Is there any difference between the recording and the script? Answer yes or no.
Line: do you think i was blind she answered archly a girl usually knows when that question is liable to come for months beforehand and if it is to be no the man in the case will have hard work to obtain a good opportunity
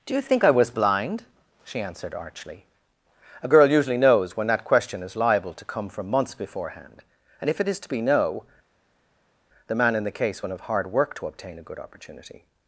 yes